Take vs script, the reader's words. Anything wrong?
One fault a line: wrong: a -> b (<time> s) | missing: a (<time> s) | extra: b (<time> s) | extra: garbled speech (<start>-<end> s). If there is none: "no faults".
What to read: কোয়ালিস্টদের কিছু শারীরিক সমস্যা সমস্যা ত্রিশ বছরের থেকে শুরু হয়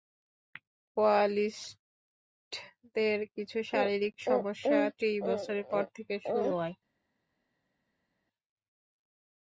missing: সমস্যা (4.8 s)
extra: পর (5.7 s)